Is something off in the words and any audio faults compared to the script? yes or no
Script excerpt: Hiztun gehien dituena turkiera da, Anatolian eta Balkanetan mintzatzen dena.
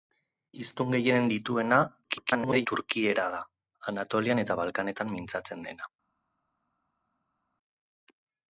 yes